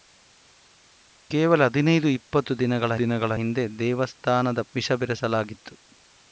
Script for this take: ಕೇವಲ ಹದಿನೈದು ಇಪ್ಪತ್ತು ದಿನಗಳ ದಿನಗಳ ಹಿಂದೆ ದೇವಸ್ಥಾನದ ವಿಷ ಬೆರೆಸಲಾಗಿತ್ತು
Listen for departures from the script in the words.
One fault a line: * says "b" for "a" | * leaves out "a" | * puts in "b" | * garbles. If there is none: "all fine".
all fine